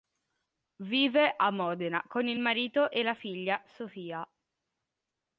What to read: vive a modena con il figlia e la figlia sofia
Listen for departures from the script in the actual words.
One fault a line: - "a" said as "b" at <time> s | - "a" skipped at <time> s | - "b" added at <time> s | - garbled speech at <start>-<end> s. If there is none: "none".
- "figlia" said as "marito" at 2.4 s